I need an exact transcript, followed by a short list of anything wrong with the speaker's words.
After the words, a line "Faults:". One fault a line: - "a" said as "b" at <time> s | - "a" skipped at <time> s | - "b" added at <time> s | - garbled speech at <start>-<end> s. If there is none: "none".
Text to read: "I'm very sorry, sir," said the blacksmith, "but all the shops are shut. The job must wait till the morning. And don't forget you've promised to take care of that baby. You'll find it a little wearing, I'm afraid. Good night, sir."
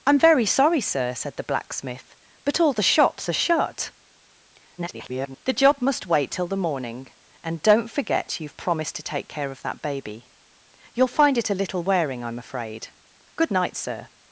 "I'm very sorry, sir," said the blacksmith, "but all the shops are shut. [garbled] The job must wait till the morning. And don't forget you've promised to take care of that baby. You'll find it a little wearing, I'm afraid. Good night, sir."
Faults:
- garbled speech at 4.8-5.4 s